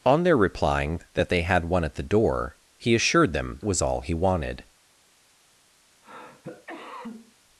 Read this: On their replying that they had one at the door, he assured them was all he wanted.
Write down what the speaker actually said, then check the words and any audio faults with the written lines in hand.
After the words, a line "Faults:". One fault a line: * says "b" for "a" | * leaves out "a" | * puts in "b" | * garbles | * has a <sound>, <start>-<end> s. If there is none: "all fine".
On their replying that they had one at the door, he assured them was all he wanted.
Faults:
* has a cough, 6.0-7.4 s